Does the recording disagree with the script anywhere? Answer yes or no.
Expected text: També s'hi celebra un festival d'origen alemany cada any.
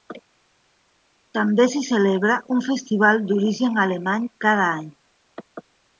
no